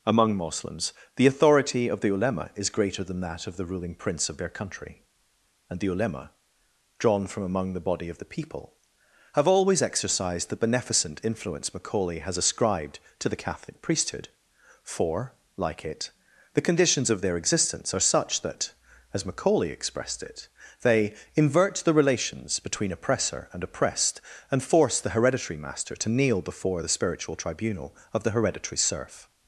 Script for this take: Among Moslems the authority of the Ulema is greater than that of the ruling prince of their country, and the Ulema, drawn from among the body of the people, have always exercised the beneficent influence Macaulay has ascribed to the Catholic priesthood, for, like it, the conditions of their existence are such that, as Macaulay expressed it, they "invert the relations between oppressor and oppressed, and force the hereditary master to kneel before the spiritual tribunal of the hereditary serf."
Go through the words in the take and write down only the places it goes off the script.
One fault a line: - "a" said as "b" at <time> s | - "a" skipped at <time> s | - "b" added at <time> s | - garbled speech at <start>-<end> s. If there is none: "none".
none